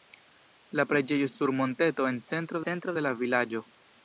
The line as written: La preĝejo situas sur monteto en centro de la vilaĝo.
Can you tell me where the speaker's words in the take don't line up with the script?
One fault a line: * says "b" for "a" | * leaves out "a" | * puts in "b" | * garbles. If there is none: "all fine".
* leaves out "situas"
* puts in "centro"